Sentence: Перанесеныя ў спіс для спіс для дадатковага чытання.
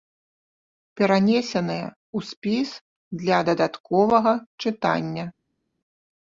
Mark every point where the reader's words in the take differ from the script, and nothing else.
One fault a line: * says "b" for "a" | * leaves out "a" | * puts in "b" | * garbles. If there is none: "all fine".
* leaves out "спіс для"